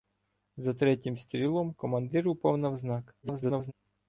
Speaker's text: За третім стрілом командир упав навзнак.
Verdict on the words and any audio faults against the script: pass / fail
fail